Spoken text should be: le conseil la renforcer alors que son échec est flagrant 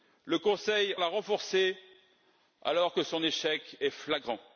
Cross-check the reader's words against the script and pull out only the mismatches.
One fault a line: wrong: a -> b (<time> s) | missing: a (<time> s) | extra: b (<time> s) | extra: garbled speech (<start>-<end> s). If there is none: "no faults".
no faults